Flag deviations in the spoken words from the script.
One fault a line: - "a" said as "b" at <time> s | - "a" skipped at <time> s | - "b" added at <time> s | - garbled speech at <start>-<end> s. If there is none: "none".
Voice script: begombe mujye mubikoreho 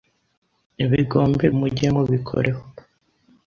none